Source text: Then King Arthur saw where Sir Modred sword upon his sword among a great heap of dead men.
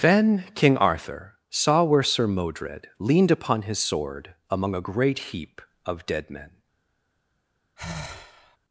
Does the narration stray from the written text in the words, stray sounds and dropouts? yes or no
yes